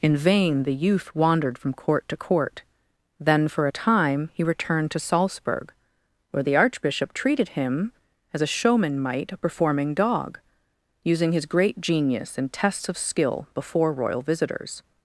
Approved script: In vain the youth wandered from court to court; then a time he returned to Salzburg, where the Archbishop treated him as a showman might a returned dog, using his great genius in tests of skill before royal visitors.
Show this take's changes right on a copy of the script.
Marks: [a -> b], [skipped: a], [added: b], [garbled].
In vain the youth wandered from court to court; then [added: for] a time he returned to Salzburg, where the Archbishop treated him as a showman might a [returned -> performing] dog, using his great genius in tests of skill before royal visitors.